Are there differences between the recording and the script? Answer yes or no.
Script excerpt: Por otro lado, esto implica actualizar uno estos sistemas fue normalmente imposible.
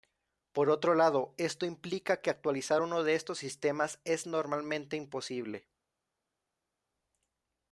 yes